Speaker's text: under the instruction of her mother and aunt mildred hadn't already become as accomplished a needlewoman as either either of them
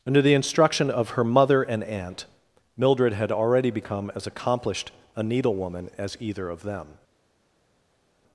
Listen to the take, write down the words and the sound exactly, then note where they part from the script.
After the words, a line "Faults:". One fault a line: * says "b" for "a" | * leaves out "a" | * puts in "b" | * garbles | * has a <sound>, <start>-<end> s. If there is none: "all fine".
under the instruction of her mother and aunt mildred had already become as accomplished a needlewoman as either of them
Faults:
* says "had" for "hadn't"
* leaves out "either"